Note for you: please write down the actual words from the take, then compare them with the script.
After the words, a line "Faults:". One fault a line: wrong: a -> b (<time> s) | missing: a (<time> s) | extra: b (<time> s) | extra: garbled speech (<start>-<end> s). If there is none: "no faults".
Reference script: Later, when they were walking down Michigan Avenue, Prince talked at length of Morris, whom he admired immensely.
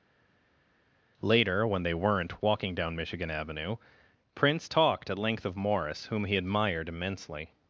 Later, when they weren't walking down Michigan Avenue, Prince talked at length of Morris, whom he admired immensely.
Faults:
wrong: were -> weren't (1.9 s)